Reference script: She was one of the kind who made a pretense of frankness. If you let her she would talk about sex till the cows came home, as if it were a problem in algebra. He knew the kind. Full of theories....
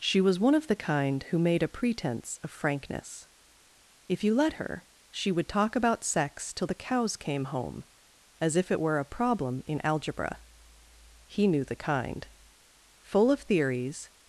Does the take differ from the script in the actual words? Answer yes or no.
no